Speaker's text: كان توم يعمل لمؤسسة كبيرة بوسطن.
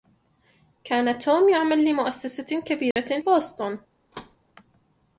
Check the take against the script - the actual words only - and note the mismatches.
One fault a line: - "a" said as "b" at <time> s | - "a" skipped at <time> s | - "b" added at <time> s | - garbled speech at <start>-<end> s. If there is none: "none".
none